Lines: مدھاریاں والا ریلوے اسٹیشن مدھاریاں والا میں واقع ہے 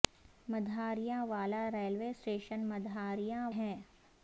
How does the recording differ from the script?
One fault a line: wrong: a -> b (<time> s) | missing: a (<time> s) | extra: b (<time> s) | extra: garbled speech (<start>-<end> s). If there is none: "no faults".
missing: والا میں واقع (3.5 s)